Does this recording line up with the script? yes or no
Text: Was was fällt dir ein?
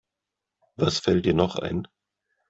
no